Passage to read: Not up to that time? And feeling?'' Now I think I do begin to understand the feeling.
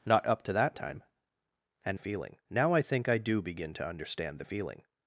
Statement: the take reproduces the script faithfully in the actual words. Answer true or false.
true